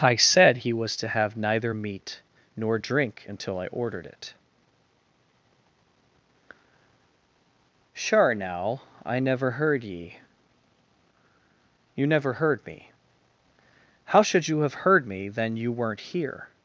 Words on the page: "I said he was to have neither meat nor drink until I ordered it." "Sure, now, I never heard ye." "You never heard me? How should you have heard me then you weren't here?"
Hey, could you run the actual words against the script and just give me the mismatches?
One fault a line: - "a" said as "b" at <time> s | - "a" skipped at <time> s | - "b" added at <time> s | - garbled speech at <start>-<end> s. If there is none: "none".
none